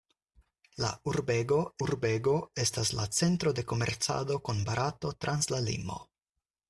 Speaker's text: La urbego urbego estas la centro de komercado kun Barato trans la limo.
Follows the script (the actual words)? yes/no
yes